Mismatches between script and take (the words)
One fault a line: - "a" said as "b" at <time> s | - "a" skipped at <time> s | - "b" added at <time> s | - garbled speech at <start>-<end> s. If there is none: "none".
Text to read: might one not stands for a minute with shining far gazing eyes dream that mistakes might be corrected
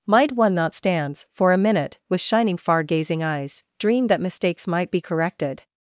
none